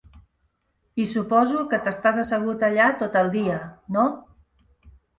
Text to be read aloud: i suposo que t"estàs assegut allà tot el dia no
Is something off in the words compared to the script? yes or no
no